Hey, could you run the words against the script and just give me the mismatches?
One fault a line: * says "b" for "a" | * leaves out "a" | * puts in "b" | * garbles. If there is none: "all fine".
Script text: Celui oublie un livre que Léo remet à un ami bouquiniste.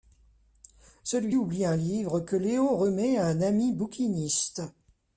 all fine